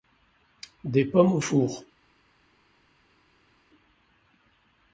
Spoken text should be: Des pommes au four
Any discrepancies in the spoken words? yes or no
no